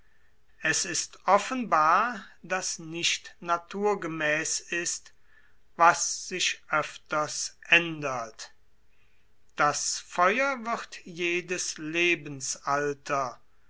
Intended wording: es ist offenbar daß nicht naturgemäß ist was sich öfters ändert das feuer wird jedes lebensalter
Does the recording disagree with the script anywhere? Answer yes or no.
no